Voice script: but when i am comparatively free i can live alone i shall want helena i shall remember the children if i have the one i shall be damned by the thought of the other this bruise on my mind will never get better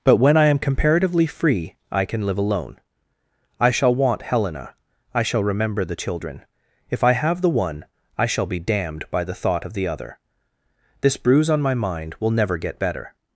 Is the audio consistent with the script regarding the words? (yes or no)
yes